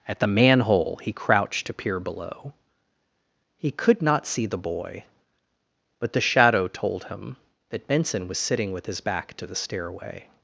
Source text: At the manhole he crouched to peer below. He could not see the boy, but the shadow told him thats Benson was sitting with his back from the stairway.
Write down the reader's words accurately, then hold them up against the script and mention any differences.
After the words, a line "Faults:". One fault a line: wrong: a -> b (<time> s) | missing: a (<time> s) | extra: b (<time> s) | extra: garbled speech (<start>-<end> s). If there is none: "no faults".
At the manhole he crouched to peer below. He could not see the boy, but the shadow told him that Benson was sitting with his back to the stairway.
Faults:
wrong: thats -> that (7.7 s)
wrong: from -> to (9.4 s)